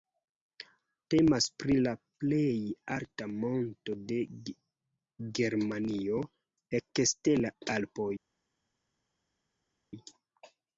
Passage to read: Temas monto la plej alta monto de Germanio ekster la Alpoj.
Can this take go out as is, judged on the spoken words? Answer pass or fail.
fail